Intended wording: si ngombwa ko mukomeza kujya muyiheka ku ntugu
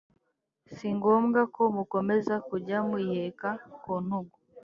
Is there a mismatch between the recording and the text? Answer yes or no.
no